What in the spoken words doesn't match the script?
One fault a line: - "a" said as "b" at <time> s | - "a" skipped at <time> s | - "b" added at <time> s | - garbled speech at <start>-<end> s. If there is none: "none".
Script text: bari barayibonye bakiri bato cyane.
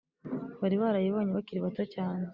none